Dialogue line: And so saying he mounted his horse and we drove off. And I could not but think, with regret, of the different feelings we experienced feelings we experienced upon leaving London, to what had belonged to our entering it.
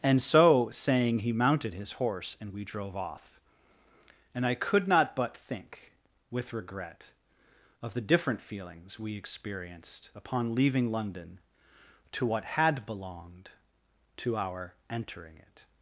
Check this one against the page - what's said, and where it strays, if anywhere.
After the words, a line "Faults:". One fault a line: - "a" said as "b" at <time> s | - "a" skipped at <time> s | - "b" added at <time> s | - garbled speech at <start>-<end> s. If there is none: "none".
And so saying he mounted his horse and we drove off. And I could not but think, with regret, of the different feelings we experienced upon leaving London, to what had belonged to our entering it.
Faults:
- "feelings we experienced" skipped at 10.1 s